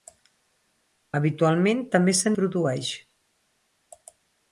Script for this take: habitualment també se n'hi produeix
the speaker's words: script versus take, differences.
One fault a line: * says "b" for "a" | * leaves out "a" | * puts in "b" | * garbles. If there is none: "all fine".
* leaves out "n'hi"